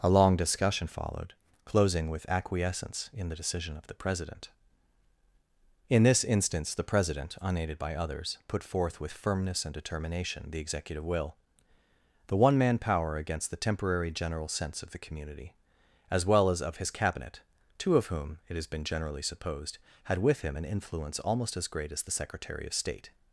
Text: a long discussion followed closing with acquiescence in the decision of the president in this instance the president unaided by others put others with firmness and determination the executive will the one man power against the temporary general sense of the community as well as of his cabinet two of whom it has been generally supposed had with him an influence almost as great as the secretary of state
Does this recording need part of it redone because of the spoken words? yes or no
yes